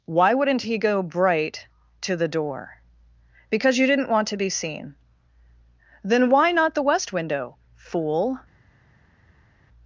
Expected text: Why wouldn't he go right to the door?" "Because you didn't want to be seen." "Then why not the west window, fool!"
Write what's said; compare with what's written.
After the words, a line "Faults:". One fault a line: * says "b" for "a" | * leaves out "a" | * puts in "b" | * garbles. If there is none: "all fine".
Why wouldn't he go bright to the door?" "Because you didn't want to be seen." "Then why not the west window, fool!"
Faults:
* says "bright" for "right"